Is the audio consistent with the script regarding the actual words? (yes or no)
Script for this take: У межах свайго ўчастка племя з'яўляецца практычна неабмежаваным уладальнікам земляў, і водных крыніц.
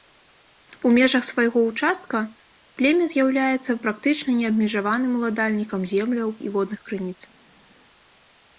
yes